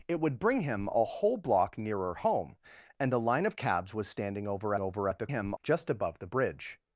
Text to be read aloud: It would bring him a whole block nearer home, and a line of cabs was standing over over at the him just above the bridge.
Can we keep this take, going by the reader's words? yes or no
yes